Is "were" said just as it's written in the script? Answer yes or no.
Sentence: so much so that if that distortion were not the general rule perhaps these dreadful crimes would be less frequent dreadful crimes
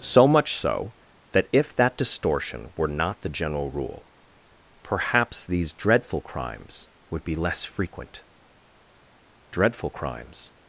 yes